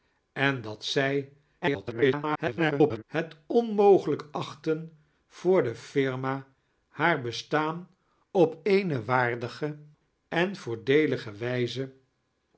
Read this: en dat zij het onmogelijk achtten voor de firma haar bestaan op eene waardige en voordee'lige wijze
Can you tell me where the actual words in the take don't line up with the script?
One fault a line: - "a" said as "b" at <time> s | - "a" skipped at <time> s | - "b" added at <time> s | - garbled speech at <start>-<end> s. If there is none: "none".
- garbled speech at 1.6-3.0 s